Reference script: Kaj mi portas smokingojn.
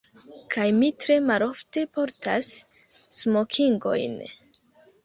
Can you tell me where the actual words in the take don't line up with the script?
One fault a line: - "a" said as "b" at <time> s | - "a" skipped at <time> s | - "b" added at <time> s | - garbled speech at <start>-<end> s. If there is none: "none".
- "tre malofte" added at 1.0 s